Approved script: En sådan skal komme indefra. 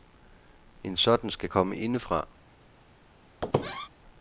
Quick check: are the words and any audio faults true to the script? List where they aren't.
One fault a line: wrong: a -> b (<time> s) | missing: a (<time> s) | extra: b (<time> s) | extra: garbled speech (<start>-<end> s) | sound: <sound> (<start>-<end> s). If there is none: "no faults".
sound: squeak (3.4-3.9 s)